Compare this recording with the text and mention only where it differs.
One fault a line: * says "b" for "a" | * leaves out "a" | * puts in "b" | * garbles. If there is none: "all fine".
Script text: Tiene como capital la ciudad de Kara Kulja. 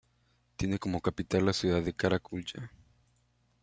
all fine